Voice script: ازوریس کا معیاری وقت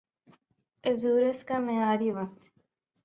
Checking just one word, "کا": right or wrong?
right